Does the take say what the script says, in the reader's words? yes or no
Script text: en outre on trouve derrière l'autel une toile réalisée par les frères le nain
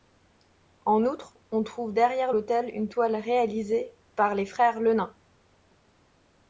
yes